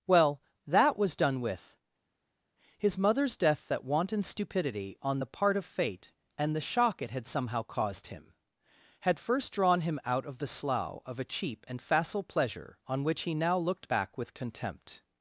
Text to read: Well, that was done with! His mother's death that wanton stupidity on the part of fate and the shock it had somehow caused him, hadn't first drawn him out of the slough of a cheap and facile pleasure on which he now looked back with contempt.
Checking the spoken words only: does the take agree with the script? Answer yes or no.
no